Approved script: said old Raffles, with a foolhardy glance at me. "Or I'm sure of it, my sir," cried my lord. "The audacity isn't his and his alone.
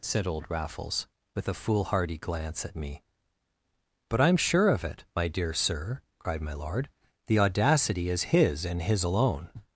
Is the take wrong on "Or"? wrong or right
wrong